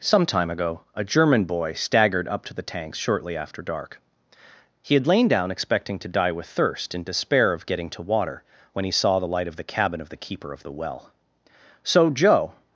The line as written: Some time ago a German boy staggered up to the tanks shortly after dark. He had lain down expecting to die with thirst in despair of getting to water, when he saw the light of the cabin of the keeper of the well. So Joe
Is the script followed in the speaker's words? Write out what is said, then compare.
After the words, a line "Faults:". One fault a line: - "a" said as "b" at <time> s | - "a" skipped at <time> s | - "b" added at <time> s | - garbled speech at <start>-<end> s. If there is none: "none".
Some time ago a German boy staggered up to the tanks shortly after dark. He had lain down expecting to die with thirst in despair of getting to water, when he saw the light of the cabin of the keeper of the well. So Joe
Faults:
none